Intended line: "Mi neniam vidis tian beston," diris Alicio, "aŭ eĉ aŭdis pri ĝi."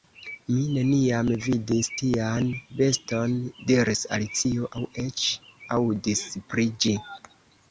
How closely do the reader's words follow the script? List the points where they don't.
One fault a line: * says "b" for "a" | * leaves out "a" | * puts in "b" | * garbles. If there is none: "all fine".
all fine